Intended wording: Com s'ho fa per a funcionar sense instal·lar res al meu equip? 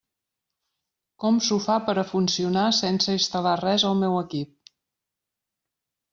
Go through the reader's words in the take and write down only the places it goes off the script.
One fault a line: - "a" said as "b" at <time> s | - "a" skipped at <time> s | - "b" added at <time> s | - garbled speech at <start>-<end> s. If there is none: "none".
none